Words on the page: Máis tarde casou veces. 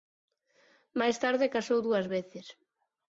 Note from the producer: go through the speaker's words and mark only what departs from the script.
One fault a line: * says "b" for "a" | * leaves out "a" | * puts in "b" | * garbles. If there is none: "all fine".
* puts in "dúas"